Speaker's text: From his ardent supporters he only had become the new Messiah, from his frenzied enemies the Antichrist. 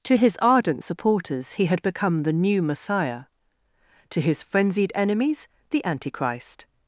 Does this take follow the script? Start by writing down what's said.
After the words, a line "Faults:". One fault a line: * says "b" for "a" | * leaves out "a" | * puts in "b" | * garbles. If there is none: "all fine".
To his ardent supporters he had become the new Messiah, to his frenzied enemies the Antichrist.
Faults:
* says "To" for "From"
* leaves out "only"
* says "to" for "from"